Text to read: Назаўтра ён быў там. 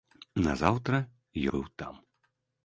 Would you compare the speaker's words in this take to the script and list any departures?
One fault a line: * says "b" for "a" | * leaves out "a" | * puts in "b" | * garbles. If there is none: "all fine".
* leaves out "ён"